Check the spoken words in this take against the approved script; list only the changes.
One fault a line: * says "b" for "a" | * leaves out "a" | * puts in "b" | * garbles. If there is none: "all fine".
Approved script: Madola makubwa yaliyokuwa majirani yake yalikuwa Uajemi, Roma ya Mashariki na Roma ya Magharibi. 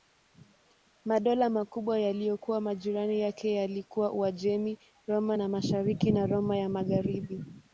all fine